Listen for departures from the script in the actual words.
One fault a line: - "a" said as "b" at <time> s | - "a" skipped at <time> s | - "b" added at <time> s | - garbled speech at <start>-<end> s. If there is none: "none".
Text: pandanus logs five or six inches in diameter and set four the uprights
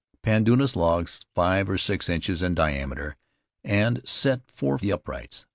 none